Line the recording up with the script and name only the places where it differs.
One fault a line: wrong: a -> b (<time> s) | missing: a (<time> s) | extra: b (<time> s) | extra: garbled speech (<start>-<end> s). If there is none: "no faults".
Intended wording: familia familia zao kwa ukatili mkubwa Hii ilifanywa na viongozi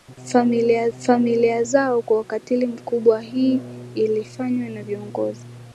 no faults